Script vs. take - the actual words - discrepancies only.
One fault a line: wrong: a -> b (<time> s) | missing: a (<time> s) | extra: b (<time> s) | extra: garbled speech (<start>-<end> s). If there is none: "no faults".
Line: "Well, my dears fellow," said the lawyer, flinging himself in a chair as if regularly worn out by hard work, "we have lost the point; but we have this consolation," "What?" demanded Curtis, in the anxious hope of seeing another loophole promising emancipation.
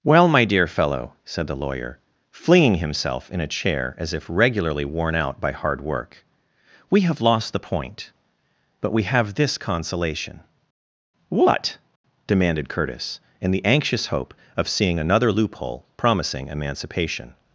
wrong: dears -> dear (0.5 s)